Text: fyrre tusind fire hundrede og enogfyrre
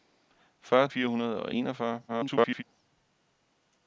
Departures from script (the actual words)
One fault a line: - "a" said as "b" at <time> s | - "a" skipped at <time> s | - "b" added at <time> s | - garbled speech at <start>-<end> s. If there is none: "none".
- "tusind" skipped at 0.9 s
- garbled speech at 2.1-2.6 s